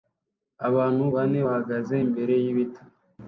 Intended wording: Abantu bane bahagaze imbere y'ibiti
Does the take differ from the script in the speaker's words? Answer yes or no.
no